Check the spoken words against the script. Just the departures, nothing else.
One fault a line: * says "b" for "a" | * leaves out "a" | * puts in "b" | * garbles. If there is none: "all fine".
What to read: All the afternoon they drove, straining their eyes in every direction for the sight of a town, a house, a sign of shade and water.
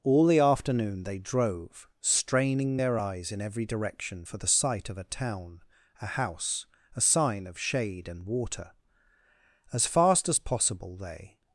* puts in "As fast as possible they"